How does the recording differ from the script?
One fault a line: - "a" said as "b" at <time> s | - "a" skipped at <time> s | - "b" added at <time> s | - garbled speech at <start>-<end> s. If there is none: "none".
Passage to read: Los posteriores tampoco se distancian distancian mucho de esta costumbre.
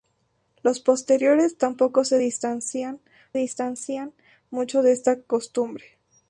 none